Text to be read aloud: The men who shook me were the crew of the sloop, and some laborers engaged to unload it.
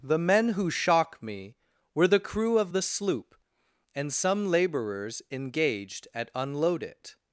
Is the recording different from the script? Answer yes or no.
yes